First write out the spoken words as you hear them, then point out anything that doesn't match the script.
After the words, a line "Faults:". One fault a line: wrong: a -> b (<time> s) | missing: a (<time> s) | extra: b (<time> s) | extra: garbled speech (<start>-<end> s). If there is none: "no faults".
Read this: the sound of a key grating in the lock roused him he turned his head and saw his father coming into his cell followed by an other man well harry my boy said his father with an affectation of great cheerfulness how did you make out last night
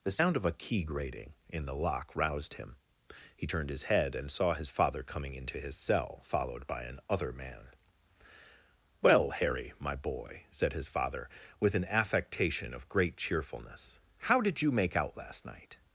the sound of a key grating in the lock roused him he turned his head and saw his father coming into his cell followed by an other man well harry my boy said his father with an affectation of great cheerfulness how did you make out last night
Faults:
no faults